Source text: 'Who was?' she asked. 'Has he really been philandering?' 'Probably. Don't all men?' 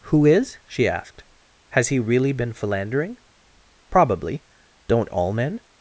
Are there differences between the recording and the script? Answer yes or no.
yes